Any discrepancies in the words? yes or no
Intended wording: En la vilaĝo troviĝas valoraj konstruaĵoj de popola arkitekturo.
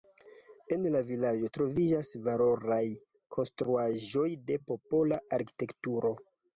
no